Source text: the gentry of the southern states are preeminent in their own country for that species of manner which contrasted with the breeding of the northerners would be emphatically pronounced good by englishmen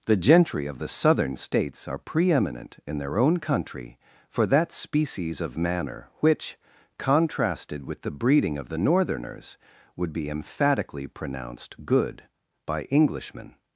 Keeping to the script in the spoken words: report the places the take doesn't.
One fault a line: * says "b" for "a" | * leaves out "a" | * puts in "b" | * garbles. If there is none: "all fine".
all fine